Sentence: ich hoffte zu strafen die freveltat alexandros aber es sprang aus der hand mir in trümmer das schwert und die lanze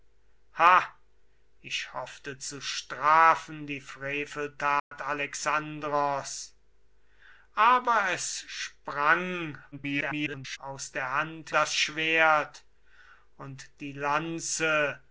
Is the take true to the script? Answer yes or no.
no